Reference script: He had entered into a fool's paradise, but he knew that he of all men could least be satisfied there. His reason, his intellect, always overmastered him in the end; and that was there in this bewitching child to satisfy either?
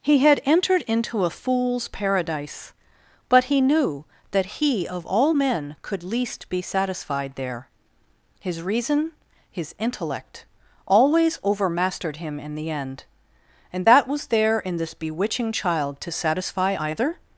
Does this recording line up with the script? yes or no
yes